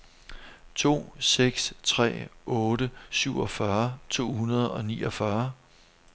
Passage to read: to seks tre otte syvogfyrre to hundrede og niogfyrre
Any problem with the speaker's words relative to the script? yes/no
no